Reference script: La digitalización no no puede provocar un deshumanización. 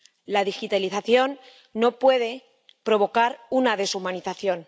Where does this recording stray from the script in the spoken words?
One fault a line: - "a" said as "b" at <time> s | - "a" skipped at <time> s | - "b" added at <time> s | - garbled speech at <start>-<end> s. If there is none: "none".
- "no" skipped at 2.0 s
- "un" said as "una" at 3.5 s